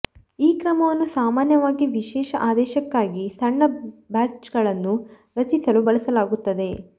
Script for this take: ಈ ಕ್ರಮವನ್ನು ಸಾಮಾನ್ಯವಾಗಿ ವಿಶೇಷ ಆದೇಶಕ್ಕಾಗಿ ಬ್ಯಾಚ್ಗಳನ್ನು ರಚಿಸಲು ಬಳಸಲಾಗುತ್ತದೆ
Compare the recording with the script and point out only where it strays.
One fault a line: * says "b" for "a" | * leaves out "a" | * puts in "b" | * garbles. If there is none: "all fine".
* puts in "ಸಣ್ಣ"